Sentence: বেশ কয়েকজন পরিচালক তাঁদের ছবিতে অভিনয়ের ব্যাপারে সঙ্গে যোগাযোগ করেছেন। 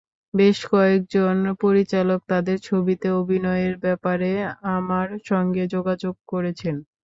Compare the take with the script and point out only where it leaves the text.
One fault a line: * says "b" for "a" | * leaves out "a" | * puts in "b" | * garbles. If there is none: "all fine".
* puts in "আমার"